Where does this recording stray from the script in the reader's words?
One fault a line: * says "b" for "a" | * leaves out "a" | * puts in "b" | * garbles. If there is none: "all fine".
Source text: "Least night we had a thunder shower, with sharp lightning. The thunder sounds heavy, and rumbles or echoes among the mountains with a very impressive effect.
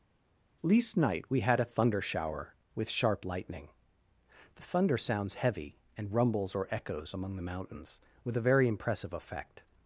all fine